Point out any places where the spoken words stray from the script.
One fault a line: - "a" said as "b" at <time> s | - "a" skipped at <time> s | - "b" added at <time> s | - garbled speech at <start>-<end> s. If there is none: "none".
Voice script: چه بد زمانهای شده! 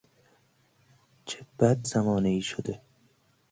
none